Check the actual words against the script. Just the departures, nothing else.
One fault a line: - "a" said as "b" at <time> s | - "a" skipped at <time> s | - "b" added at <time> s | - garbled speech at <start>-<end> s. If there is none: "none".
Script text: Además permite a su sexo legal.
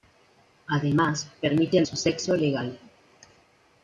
none